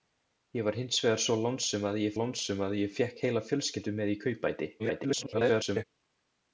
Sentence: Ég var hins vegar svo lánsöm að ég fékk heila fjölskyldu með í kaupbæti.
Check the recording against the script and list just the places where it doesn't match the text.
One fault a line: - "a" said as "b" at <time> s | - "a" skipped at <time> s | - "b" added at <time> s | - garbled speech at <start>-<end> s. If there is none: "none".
- "lánsöm að ég" added at 2.2 s
- garbled speech at 4.8-5.8 s